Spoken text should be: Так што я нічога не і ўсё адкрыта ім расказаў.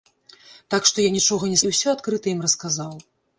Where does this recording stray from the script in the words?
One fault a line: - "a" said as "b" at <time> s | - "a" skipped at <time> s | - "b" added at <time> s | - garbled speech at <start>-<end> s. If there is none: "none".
none